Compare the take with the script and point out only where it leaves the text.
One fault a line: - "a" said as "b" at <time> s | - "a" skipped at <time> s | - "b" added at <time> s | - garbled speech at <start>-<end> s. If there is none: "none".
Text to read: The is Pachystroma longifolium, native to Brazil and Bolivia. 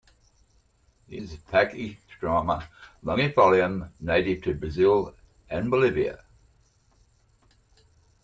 none